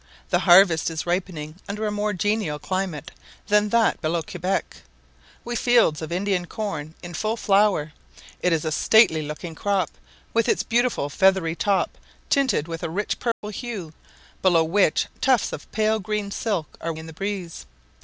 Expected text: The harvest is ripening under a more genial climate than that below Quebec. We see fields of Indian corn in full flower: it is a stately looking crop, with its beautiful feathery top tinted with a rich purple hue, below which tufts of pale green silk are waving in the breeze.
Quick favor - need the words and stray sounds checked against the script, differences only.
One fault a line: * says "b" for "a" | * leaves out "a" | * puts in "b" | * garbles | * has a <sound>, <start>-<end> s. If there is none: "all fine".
* leaves out "see"
* has a dropout, 13.3-13.4 s
* leaves out "waving"